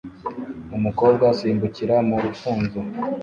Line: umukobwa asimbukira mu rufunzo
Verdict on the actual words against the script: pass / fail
pass